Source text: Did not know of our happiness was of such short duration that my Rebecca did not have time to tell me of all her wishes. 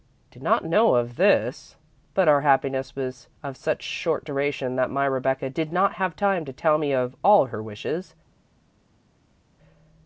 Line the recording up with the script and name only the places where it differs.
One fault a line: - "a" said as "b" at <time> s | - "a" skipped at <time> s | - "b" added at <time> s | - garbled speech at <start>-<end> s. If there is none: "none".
- "this but" added at 1.1 s